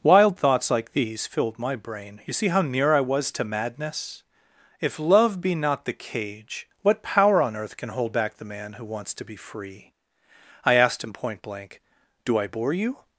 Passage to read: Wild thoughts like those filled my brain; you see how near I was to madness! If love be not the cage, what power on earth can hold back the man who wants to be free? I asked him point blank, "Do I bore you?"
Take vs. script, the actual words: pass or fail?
fail